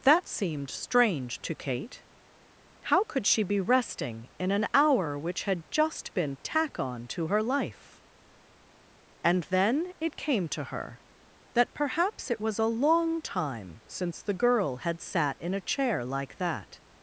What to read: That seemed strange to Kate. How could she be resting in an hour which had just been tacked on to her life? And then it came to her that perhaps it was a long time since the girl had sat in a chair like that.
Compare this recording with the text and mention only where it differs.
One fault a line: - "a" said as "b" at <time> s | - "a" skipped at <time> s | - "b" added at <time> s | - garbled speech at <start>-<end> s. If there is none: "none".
- "tacked" said as "tack" at 6.4 s